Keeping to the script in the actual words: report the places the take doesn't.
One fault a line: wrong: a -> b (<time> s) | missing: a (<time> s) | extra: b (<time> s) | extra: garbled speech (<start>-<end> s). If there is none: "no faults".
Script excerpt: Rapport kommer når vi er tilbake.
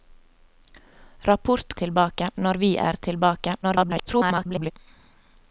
wrong: kommer -> tilbake (1.8 s)
extra: garbled speech (3.6-4.7 s)